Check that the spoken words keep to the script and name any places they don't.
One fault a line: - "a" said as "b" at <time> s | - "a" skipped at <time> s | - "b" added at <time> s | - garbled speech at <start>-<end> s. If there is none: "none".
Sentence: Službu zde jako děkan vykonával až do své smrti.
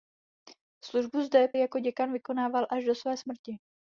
none